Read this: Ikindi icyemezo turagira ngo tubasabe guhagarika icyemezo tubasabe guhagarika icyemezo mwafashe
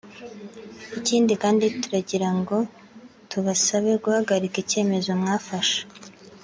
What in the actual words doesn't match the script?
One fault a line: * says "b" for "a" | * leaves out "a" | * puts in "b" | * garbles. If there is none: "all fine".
* says "kandi" for "icyemezo"
* leaves out "tubasabe guhagarika icyemezo"